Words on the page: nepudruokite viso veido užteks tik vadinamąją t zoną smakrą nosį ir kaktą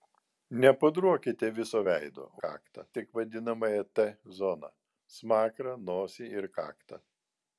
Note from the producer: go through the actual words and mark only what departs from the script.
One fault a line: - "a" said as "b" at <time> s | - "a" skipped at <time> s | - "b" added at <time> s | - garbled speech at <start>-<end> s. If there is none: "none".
- "užteks" said as "kaktą" at 2.4 s